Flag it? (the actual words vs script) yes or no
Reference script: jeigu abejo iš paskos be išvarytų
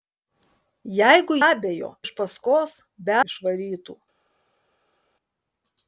no